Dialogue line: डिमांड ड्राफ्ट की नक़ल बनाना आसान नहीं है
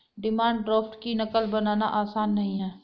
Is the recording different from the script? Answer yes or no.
no